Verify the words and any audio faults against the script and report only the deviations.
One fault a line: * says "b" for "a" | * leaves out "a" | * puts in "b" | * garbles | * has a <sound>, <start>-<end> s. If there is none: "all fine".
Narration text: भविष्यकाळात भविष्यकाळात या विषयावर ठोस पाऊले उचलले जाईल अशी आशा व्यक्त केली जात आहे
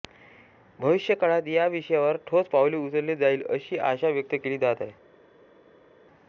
* leaves out "भविष्यकाळात"